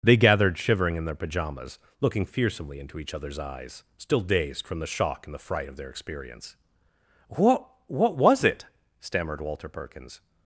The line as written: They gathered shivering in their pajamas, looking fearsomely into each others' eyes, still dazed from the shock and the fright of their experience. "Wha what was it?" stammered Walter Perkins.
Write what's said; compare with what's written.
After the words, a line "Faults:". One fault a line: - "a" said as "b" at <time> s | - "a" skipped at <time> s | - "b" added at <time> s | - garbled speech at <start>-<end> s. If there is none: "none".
They gathered shivering in their pajamas, looking fearsomely into each others' eyes, still dazed from the shock and the fright of their experience. "What what was it?" stammered Walter Perkins.
Faults:
- "Wha" said as "What" at 7.3 s